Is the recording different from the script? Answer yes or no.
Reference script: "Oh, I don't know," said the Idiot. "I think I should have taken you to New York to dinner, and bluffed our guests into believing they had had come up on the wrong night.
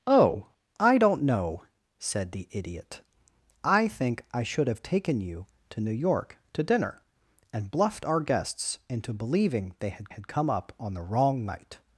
no